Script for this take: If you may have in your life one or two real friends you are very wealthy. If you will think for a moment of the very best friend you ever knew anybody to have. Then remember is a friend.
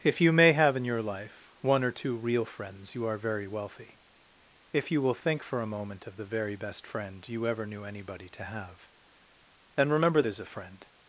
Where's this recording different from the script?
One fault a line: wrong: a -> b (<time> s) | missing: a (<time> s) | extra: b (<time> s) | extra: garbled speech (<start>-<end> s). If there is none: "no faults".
no faults